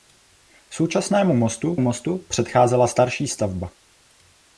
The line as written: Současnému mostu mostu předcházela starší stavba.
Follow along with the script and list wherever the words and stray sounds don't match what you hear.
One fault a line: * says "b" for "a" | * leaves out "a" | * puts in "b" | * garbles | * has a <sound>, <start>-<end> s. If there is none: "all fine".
all fine